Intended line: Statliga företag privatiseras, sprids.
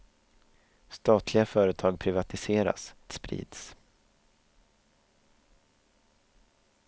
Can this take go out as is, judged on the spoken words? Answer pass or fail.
pass